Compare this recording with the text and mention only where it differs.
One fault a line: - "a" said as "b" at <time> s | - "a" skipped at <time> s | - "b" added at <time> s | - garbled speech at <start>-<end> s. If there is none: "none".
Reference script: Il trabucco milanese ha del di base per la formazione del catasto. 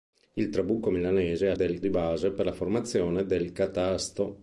none